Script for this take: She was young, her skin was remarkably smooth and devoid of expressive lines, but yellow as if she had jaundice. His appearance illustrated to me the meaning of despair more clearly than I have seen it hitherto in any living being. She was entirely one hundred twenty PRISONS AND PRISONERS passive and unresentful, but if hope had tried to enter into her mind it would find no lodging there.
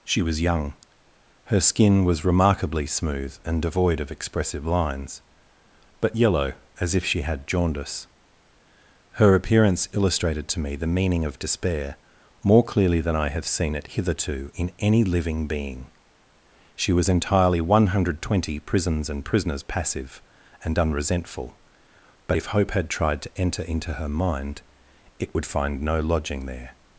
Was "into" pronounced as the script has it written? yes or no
yes